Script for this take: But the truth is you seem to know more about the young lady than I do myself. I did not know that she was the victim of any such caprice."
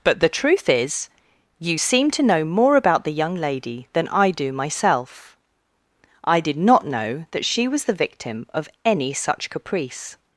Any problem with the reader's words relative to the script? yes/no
no